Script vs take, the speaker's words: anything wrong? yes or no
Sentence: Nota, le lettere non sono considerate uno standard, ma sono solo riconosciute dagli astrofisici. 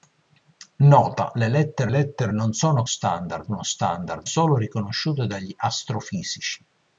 yes